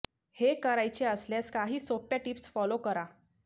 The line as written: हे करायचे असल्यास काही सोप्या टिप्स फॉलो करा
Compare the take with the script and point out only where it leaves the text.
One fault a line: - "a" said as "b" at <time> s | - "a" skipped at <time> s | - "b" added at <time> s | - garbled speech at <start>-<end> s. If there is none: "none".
none